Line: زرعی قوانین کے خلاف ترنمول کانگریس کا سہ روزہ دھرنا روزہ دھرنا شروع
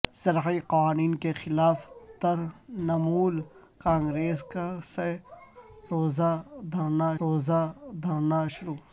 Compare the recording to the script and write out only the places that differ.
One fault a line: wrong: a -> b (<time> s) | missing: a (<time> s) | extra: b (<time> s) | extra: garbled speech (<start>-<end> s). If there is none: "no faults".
no faults